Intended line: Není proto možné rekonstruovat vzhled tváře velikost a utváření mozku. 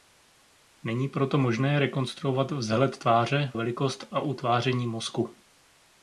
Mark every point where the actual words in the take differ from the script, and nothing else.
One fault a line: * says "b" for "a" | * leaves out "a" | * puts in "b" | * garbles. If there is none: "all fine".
all fine